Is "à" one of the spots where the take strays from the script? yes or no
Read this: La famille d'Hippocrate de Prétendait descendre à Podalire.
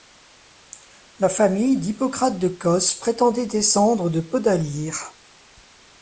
yes